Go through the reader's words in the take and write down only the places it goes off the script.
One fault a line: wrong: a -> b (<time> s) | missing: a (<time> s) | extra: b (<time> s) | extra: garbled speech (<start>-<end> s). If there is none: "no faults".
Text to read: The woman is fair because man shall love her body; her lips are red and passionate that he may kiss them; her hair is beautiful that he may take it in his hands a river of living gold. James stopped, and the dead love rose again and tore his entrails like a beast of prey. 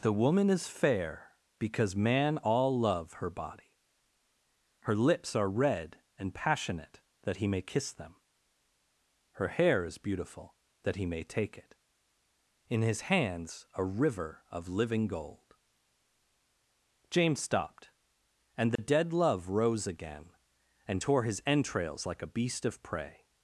wrong: shall -> all (2.4 s)